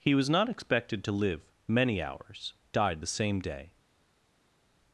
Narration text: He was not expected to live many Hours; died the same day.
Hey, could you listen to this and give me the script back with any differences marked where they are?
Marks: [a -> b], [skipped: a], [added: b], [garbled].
He was not expected to live many Hours; died the same day.